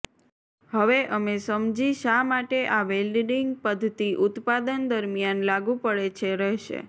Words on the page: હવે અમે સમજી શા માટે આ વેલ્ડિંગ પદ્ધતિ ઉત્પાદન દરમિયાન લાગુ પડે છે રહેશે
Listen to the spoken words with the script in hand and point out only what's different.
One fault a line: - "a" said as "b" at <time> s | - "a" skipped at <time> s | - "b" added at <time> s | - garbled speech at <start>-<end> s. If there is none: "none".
none